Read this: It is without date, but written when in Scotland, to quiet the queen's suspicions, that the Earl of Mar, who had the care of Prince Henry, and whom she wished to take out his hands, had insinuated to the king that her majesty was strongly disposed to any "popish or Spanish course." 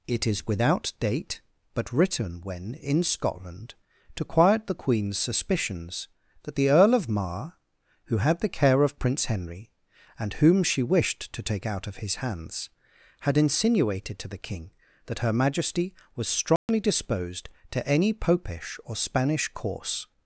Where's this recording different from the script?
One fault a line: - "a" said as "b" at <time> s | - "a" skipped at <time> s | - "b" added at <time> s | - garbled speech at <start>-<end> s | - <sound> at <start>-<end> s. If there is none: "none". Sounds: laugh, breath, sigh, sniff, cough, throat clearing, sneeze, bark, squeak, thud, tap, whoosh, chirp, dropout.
- "of" added at 11.9 s
- dropout at 16.6-16.7 s